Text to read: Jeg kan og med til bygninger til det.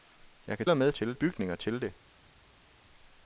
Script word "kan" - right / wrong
right